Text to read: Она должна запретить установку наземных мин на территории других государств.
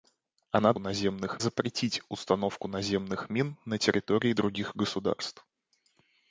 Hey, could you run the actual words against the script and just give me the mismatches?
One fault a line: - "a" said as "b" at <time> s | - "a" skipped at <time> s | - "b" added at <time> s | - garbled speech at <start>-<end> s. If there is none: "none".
- "должна" said as "наземных" at 0.8 s